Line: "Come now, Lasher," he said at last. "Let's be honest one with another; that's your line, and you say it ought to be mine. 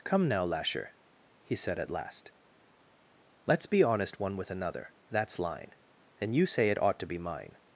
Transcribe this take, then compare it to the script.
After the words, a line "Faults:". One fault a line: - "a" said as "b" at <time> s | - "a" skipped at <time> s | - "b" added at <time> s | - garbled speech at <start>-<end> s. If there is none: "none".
"Come now, Lasher," he said at last. "Let's be honest one with another; that's line, and you say it ought to be mine.
Faults:
- "your" skipped at 5.4 s